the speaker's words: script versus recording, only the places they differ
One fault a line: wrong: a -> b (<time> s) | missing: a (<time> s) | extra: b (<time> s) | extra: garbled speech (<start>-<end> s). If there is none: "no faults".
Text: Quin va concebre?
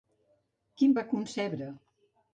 no faults